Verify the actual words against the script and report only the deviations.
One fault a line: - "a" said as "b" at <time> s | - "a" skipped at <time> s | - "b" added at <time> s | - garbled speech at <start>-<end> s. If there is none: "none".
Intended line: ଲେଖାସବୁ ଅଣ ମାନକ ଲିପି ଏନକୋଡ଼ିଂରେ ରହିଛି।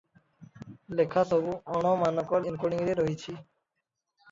- "ଲିପି" skipped at 2.4 s